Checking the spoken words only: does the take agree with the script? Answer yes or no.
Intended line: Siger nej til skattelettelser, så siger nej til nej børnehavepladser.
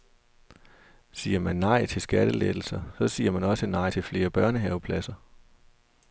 no